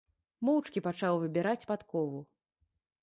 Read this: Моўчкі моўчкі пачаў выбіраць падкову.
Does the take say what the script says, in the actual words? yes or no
no